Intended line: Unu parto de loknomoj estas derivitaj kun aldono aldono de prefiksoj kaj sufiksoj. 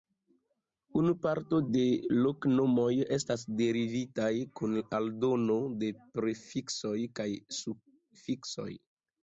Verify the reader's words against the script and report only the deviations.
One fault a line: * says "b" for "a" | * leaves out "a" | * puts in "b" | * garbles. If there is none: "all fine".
* leaves out "aldono"